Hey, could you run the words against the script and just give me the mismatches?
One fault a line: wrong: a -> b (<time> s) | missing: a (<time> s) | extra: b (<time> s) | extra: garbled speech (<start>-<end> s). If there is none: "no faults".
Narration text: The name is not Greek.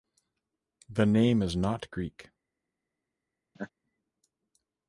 no faults